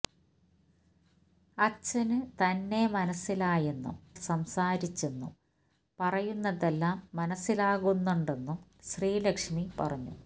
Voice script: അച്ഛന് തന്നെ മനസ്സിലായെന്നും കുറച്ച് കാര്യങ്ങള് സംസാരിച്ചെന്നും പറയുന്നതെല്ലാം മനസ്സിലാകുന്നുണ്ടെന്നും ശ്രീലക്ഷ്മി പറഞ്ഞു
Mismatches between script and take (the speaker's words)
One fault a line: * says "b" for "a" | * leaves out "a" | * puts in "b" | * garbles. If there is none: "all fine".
* leaves out "കുറച്ച് കാര്യങ്ങള്"